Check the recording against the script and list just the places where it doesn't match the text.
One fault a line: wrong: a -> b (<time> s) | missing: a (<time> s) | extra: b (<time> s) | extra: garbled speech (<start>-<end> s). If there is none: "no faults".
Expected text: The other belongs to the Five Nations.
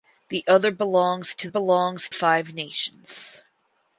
wrong: the -> belongs (1.5 s)